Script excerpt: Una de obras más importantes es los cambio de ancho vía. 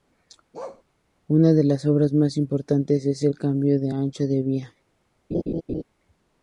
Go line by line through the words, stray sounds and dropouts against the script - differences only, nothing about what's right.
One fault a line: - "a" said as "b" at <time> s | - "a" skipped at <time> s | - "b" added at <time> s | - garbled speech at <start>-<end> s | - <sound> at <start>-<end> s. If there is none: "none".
- bark at 0.5-0.8 s
- "las" added at 1.6 s
- "los" said as "el" at 3.2 s
- "de" added at 4.3 s
- laugh at 5.3-5.8 s